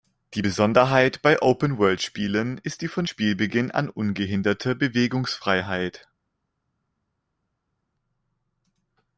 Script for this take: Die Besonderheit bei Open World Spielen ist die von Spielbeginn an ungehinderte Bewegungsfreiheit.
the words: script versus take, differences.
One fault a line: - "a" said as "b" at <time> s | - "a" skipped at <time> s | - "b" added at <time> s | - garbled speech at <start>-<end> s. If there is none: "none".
none